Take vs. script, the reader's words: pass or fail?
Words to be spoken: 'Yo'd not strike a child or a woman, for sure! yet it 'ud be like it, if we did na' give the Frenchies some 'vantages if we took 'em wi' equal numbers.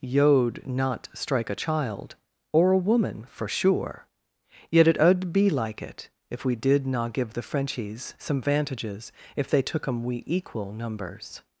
fail